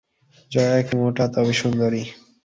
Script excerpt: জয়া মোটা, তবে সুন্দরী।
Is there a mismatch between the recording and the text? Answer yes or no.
yes